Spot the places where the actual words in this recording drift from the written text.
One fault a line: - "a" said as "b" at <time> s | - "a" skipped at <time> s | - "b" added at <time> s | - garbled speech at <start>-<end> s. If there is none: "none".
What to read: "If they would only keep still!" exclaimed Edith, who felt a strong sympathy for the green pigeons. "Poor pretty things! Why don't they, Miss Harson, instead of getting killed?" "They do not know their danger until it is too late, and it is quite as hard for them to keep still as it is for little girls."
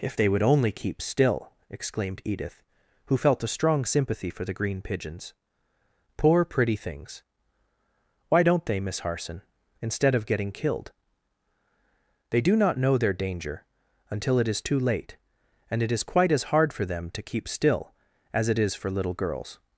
none